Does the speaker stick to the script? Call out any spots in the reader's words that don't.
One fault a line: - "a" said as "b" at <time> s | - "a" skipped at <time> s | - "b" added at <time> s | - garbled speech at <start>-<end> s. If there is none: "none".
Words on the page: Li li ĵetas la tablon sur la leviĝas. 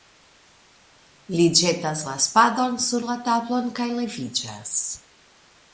- "li" skipped at 1.4 s
- "tablon" said as "spadon" at 2.3 s
- "tablon kaj" added at 3.3 s